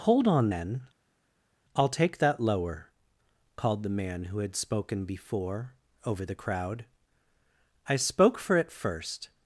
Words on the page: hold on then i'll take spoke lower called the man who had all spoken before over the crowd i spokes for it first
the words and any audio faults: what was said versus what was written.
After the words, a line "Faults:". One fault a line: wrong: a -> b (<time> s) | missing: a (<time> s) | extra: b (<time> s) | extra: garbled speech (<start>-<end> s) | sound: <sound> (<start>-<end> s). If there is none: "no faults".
hold on then i'll take that lower called the man who had spoken before over the crowd i spoke for it first
Faults:
wrong: spoke -> that (2.2 s)
missing: all (4.6 s)
wrong: spokes -> spoke (8.0 s)